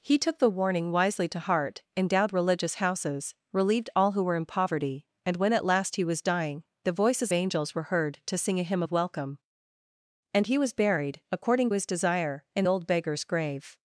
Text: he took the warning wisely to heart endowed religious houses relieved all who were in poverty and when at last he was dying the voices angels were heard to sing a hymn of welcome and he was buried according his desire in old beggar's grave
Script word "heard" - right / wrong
right